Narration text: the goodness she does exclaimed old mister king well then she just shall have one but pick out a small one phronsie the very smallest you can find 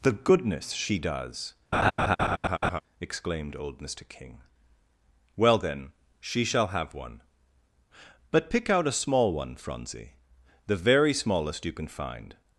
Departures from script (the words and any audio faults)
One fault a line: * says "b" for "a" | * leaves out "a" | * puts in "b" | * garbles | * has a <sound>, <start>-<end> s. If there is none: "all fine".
* has a laugh, 1.7-2.8 s
* leaves out "just"